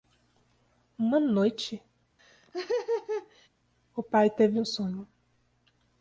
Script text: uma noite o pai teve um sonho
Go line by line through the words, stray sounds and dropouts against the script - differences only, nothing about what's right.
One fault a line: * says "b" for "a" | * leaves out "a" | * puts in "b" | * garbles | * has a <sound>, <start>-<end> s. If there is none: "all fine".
* has a laugh, 2.2-3.5 s